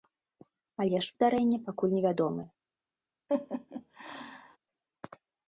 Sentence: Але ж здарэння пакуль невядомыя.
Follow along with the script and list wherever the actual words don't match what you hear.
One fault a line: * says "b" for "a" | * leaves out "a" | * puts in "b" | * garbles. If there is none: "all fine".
all fine